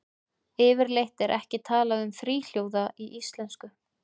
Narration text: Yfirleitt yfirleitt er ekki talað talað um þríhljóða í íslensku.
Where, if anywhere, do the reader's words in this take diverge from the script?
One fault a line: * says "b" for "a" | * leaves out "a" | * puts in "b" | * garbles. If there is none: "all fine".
* leaves out "yfirleitt"
* leaves out "talað"